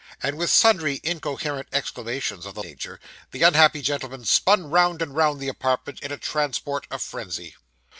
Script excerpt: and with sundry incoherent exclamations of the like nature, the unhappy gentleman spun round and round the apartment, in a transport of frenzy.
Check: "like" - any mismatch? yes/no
yes